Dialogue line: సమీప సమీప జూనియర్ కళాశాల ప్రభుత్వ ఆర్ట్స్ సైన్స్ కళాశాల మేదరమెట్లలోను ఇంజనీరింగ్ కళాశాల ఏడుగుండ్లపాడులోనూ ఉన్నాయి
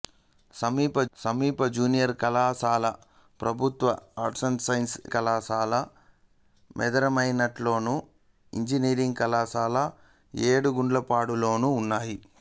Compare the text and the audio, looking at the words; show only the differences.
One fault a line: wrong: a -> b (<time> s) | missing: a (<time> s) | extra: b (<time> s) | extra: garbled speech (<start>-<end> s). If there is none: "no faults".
no faults